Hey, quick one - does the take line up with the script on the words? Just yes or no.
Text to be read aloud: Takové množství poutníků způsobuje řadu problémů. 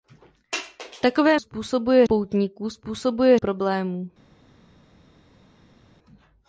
no